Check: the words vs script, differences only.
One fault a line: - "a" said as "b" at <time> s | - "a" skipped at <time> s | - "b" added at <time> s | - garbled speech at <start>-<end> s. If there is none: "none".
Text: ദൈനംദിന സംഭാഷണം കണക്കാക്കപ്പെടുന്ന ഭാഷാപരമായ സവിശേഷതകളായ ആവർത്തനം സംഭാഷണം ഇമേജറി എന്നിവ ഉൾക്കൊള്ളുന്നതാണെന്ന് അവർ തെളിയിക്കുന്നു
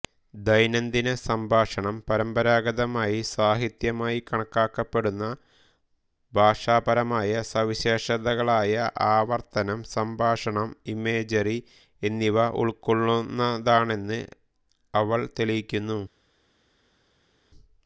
- "പരമ്പരാഗതമായി സാഹിത്യമായി" added at 2.1 s
- "അവർ" said as "അവൾ" at 14.9 s